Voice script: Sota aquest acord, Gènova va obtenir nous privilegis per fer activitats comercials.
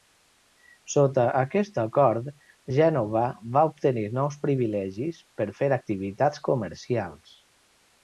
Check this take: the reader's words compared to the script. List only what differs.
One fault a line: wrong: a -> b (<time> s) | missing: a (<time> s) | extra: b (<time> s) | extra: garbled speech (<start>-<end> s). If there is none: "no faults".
no faults